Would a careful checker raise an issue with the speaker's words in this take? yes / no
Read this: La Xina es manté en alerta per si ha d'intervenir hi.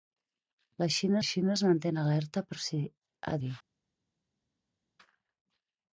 yes